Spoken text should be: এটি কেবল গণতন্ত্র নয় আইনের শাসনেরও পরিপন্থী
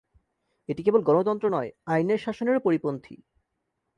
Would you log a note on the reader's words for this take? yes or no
no